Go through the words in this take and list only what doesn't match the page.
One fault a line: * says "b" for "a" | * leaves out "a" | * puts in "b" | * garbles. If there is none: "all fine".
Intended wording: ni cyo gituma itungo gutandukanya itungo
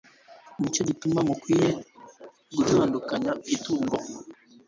* says "mukwiriye" for "itungo"